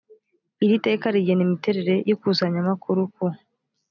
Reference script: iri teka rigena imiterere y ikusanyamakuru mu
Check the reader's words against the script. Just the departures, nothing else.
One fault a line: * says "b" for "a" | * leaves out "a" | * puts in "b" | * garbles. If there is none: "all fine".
* says "ku" for "mu"